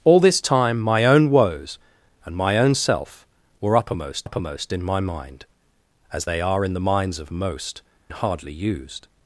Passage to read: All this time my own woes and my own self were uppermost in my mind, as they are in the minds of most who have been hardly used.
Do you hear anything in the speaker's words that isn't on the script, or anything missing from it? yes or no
yes